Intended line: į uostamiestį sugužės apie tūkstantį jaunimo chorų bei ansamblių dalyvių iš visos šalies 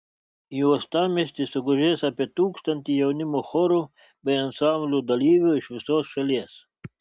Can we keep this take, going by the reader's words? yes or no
yes